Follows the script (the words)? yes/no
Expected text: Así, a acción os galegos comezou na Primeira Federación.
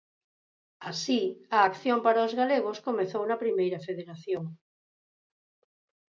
no